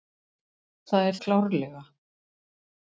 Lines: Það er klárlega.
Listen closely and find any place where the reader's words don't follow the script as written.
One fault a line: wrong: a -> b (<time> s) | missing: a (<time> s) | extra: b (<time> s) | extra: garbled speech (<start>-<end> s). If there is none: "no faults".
no faults